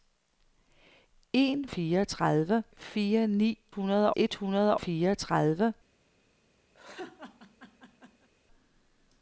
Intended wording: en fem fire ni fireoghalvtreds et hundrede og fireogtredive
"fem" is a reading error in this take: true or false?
true